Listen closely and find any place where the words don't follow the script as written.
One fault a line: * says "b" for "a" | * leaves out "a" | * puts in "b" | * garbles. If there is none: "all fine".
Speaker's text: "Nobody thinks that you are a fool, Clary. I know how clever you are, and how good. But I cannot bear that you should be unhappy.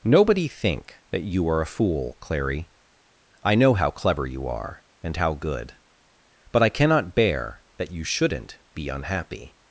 * says "think" for "thinks"
* says "shouldn't" for "should"